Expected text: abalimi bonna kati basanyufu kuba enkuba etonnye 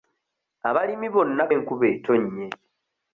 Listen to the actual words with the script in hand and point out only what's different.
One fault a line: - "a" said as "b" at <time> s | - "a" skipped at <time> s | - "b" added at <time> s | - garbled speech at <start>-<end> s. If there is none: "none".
- "kati basanyufu kuba" skipped at 1.4 s